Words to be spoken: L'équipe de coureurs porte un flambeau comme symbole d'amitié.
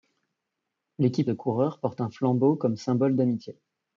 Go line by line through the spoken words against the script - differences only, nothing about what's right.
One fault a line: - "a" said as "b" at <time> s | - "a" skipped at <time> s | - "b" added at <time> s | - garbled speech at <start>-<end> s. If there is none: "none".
none